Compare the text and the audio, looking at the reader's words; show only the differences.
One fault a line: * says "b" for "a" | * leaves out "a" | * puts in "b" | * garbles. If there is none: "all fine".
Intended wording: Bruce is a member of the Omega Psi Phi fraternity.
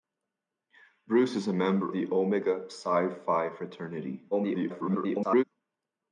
* leaves out "of"
* garbles